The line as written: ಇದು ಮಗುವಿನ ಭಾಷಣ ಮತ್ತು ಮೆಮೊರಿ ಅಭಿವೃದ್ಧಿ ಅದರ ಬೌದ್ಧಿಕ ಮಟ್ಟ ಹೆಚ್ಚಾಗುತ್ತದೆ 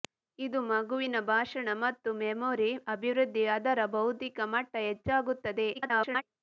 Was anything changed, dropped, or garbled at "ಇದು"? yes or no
no